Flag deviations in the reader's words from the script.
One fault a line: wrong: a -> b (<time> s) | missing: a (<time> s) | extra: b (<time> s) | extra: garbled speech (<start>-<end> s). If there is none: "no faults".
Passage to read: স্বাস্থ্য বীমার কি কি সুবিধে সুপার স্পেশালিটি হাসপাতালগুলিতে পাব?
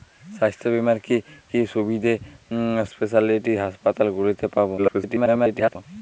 missing: সুপার (2.1 s)
extra: garbled speech (4.8-5.8 s)